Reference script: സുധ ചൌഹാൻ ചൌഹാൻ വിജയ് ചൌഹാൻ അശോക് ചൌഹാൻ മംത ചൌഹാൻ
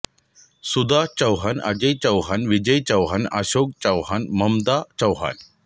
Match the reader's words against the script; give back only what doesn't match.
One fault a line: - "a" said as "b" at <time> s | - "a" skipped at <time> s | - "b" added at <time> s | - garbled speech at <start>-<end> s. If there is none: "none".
- "അജയ്" added at 1.6 s